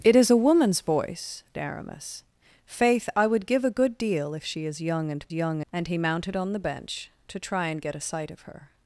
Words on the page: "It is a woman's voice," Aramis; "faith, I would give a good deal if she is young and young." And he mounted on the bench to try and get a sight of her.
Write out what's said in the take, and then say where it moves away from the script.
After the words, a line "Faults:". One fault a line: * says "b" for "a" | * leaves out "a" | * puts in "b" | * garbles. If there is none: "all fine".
"It is a woman's voice," Aramis; "faith, I would give a good deal if she is young and young." And he mounted on the bench to try and get a sight of her.
Faults:
all fine